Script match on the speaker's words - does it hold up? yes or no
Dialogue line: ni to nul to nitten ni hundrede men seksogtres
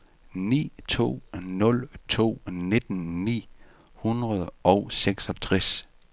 no